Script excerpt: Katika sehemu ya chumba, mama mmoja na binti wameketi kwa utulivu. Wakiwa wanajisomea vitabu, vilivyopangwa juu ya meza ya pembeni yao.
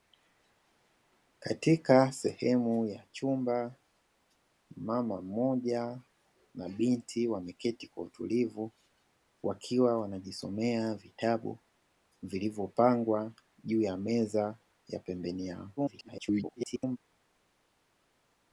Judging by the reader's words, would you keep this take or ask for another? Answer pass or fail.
fail